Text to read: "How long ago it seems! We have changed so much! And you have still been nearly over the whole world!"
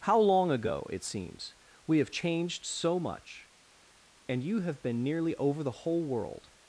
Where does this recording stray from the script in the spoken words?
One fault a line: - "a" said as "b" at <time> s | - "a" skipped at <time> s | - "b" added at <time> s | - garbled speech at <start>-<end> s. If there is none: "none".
- "still" skipped at 4.8 s